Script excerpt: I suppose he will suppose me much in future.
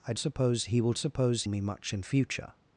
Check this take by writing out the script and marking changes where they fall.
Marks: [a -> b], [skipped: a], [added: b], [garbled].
I suppose he will suppose me much in future.